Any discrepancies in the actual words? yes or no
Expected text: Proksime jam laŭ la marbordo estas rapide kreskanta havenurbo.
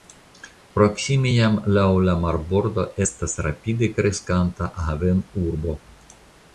no